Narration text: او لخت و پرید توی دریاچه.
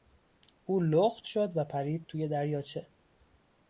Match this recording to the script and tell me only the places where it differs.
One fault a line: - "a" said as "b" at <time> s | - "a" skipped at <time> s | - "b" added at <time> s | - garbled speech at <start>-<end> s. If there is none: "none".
- "شد" added at 1.2 s